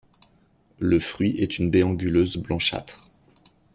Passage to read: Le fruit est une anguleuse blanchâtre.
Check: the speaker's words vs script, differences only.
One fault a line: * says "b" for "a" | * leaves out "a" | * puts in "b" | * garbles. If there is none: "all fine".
* puts in "baie"